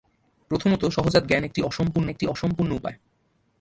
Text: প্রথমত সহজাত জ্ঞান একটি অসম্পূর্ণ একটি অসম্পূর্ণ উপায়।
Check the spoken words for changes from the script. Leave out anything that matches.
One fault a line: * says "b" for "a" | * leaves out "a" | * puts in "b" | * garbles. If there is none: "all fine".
all fine